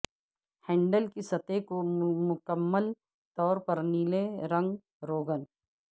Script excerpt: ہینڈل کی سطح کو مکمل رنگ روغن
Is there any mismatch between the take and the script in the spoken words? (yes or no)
yes